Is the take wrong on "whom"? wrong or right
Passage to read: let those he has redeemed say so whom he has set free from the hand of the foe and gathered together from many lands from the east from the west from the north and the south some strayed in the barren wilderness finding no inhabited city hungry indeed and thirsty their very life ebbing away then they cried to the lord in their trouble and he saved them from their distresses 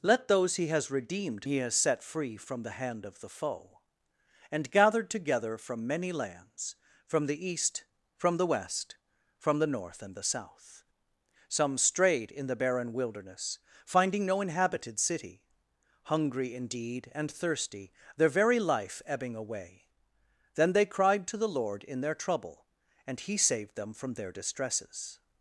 wrong